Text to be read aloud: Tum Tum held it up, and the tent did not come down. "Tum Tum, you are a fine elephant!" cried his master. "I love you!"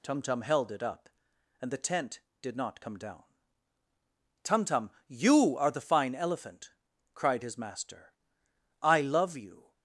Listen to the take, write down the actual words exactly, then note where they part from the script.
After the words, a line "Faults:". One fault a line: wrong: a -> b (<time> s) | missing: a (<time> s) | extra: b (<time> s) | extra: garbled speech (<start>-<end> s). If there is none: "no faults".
Tum Tum held it up, and the tent did not come down. "Tum Tum, you are the fine elephant!" cried his master. "I love you!"
Faults:
wrong: a -> the (5.7 s)